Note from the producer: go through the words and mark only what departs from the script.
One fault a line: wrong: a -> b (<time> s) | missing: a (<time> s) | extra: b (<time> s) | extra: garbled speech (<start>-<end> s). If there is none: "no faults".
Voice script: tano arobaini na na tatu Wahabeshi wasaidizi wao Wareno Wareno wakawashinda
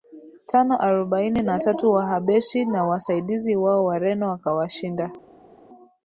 missing: na (1.6 s)
extra: na (2.6 s)
missing: Wareno (4.3 s)